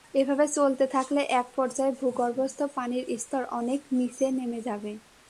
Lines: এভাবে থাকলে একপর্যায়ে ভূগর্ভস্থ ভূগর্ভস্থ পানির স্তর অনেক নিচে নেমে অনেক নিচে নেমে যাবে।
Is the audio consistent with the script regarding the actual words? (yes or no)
no